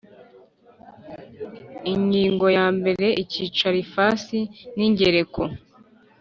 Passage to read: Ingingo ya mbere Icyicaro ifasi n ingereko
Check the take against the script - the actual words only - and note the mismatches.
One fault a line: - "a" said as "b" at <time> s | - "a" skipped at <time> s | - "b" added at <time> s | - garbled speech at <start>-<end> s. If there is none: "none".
none